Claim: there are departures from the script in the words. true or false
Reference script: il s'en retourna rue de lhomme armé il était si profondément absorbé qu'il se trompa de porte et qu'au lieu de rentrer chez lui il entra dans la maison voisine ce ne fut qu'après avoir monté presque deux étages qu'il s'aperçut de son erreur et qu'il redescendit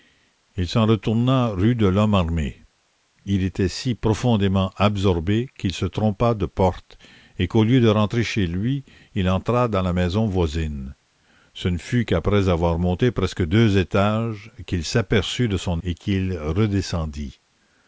true